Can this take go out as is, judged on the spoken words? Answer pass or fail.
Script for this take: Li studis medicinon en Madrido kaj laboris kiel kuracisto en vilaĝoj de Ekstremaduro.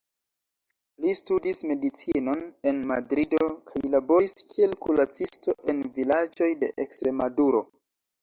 pass